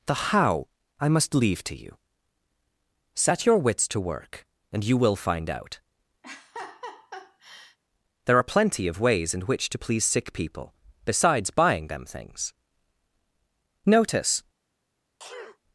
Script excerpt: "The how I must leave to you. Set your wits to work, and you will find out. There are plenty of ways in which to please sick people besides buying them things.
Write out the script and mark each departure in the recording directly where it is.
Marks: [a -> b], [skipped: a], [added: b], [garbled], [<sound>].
"The how I must leave to you. Set your wits to work, and you will find out. [laugh] There are plenty of ways in which to please sick people besides buying them things. [added: Notice] [sneeze]